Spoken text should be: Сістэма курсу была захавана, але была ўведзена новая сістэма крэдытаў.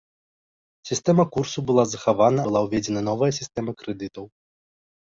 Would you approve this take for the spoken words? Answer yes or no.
no